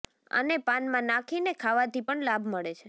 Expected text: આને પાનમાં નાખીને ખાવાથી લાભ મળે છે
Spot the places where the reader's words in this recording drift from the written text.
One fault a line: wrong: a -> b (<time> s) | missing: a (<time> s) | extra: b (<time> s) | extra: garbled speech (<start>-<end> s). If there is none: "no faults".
extra: પણ (2.0 s)